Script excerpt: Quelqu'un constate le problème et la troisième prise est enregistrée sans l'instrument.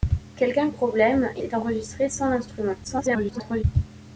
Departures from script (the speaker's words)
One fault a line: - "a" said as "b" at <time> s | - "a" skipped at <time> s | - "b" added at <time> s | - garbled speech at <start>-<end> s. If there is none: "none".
- "constate le" skipped at 0.7 s
- "la troisième prise" skipped at 1.4 s
- garbled speech at 2.8-3.6 s